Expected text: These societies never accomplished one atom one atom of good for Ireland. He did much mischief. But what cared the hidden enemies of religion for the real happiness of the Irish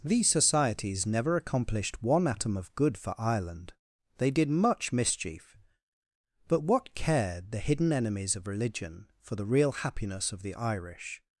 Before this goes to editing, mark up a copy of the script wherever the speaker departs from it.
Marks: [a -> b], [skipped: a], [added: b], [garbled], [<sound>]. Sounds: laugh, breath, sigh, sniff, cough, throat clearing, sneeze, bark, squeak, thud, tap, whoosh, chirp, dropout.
These societies never accomplished one atom [skipped: one atom] of good for Ireland. [He -> They] did much mischief. But what cared the hidden enemies of religion for the real happiness of the Irish